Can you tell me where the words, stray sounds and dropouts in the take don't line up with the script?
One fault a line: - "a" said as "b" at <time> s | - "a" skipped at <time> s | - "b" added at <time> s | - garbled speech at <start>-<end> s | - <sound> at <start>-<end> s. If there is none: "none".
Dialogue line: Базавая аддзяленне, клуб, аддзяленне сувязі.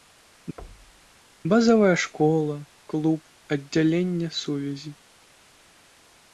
- thud at 0.6-1.1 s
- "аддзяленне" said as "школа" at 2.0 s